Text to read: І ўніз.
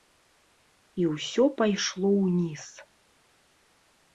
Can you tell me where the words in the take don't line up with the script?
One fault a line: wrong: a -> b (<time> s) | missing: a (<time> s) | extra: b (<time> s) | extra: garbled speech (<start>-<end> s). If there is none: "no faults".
extra: ўсё пайшло (1.1 s)